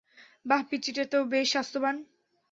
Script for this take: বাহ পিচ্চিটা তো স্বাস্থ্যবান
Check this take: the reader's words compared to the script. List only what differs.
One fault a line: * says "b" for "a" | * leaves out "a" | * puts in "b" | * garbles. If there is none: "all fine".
* puts in "বেশ"